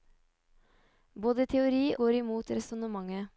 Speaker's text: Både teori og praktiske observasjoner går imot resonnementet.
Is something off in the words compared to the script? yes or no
yes